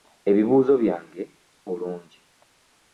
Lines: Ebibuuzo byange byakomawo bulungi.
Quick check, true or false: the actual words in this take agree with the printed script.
false